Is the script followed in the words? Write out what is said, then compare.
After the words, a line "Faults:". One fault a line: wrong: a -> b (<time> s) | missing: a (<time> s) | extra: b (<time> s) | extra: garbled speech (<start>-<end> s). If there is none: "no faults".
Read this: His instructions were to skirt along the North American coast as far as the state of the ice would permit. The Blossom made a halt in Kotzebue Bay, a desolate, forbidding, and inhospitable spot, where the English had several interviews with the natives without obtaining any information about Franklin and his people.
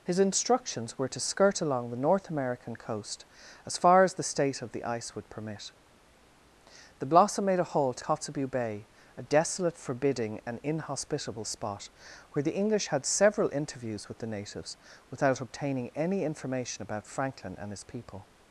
His instructions were to skirt along the North American coast as far as the state of the ice would permit. The Blossom made a halt Kotzebue Bay, a desolate, forbidding, and inhospitable spot, where the English had several interviews with the natives without obtaining any information about Franklin and his people.
Faults:
missing: in (8.0 s)